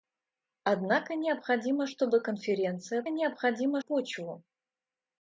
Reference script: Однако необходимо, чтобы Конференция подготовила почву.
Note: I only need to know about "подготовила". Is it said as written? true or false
false